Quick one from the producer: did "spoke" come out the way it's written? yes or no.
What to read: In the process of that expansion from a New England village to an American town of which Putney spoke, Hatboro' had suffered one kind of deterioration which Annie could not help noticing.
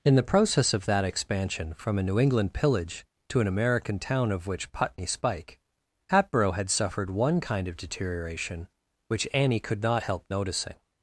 no